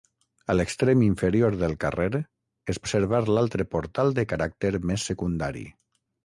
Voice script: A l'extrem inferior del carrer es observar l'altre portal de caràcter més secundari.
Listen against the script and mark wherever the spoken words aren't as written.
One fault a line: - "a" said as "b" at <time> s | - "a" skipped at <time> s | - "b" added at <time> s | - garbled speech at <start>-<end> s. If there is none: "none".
none